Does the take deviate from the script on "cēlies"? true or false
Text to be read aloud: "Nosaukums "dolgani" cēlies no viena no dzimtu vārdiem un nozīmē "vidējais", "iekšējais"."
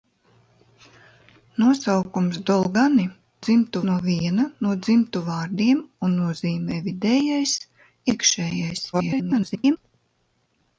true